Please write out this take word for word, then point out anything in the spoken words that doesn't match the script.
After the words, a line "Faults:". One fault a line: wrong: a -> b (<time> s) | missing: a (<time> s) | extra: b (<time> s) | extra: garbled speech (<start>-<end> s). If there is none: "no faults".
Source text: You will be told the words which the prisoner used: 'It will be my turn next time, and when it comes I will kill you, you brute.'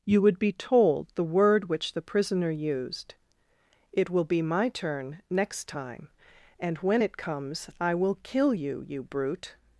You would be told the word which the prisoner used: 'It will be my turn next time, and when it comes I will kill you, you brute.'
Faults:
wrong: will -> would (0.2 s)
wrong: words -> word (1.2 s)